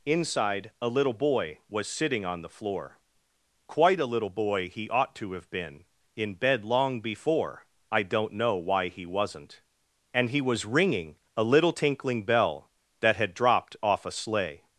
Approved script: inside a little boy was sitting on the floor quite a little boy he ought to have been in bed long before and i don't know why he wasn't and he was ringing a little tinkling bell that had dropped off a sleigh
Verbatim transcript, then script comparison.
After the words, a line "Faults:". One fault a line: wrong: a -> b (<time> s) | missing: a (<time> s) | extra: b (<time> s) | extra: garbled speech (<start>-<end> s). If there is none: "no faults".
inside a little boy was sitting on the floor quite a little boy he ought to have been in bed long before i don't know why he wasn't and he was ringing a little tinkling bell that had dropped off a sleigh
Faults:
missing: and (7.7 s)